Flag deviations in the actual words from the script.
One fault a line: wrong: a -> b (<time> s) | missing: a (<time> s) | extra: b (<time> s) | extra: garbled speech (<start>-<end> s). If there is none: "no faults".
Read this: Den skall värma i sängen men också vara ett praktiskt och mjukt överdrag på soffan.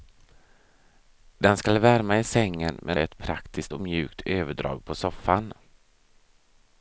missing: också vara (3.0 s)